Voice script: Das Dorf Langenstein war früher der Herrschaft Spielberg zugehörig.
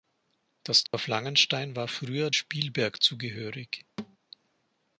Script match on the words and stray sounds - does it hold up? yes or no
no